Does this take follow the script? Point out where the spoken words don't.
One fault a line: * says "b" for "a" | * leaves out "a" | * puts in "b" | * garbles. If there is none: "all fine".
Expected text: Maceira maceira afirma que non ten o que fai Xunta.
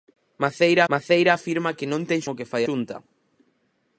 all fine